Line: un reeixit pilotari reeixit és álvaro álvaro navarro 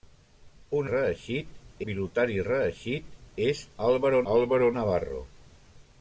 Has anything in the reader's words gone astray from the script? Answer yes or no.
no